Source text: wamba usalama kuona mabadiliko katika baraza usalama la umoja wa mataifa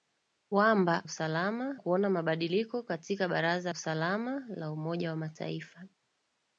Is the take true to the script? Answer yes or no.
yes